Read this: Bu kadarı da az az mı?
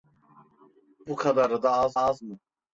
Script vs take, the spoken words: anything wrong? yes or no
no